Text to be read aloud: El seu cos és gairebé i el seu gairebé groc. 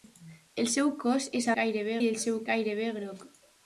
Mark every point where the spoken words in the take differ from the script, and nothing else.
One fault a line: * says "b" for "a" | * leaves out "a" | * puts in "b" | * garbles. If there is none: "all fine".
all fine